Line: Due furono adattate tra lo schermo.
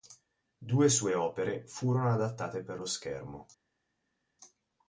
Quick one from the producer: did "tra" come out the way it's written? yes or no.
no